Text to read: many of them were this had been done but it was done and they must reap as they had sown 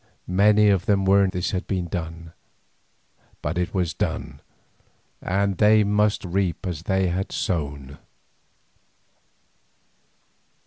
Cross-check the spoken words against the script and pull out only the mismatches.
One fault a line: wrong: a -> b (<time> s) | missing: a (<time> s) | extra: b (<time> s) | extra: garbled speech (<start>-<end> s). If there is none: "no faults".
no faults